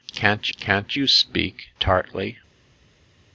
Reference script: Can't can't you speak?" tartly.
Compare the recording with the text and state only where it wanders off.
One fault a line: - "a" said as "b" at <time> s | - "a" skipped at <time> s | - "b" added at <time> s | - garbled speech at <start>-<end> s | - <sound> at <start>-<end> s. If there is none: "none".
none